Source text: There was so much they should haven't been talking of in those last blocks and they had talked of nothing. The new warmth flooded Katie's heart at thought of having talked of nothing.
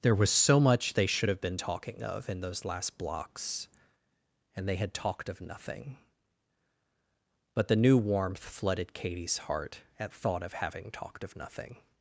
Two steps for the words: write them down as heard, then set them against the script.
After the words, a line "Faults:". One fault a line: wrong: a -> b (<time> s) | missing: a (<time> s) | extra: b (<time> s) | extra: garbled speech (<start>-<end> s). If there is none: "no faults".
There was so much they should have been talking of in those last blocks and they had talked of nothing. But the new warmth flooded Katie's heart at thought of having talked of nothing.
Faults:
wrong: haven't -> have (1.3 s)
extra: But (7.5 s)